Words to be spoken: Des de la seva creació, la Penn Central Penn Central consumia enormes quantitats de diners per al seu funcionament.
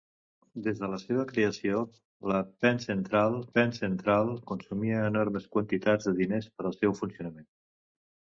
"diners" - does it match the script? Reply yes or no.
yes